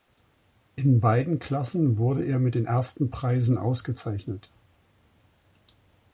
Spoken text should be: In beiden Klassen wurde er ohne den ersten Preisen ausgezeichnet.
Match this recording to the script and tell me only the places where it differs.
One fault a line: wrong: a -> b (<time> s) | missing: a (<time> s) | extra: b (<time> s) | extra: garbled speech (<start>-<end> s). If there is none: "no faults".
wrong: ohne -> mit (2.4 s)